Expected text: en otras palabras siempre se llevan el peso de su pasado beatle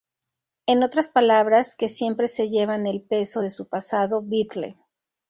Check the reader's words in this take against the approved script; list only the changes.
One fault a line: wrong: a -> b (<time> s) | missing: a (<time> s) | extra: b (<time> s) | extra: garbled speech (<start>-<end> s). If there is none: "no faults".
extra: que (1.8 s)